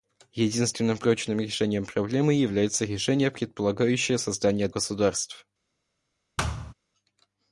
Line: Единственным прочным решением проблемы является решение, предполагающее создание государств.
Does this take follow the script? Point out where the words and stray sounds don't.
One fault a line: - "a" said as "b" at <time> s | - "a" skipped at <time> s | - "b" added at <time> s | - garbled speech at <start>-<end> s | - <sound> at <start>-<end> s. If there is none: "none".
- thud at 6.4-6.7 s